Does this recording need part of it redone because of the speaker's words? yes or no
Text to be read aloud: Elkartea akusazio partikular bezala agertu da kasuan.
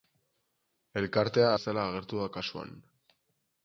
yes